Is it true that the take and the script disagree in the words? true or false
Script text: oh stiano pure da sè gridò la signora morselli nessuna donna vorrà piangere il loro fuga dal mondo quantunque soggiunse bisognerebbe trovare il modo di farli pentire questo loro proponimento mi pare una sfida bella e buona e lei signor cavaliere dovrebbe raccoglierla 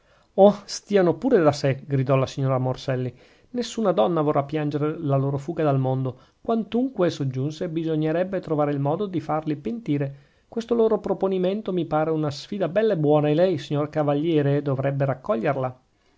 true